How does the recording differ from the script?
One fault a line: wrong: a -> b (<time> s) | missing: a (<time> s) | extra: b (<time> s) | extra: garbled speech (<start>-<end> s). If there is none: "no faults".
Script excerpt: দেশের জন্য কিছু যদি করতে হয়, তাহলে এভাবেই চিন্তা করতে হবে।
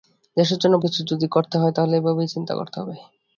no faults